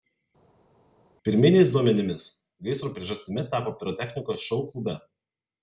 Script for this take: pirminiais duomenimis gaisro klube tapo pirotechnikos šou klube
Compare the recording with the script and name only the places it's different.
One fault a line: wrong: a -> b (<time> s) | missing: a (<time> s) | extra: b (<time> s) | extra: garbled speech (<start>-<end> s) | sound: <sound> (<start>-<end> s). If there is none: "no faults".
wrong: klube -> priežastimi (3.0 s)